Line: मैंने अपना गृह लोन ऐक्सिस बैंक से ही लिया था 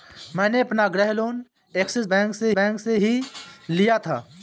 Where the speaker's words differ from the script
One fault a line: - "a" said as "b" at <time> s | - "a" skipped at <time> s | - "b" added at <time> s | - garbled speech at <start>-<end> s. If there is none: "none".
- "बैंक से" added at 2.5 s